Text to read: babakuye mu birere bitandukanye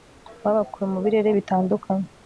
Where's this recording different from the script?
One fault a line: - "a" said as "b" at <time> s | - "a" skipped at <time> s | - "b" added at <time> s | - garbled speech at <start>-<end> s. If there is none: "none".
none